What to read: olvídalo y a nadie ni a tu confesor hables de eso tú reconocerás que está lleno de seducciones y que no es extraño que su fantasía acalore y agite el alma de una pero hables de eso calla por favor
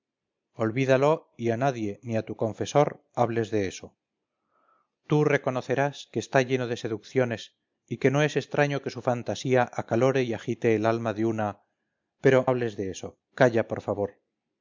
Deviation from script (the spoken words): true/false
false